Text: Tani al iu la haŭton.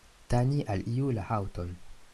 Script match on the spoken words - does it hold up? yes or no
yes